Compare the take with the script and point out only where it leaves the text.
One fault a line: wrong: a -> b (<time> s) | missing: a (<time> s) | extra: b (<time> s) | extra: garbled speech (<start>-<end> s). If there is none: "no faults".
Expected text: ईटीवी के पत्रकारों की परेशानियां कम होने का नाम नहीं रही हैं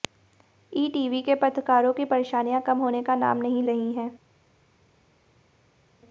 no faults